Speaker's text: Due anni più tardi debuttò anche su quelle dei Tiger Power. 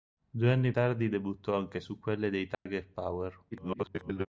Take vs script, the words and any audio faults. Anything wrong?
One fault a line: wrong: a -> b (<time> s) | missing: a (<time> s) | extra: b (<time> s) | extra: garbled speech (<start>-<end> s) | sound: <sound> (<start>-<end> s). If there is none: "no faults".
missing: più (0.7 s)
sound: dropout (2.5-2.7 s)
extra: garbled speech (3.5-4.3 s)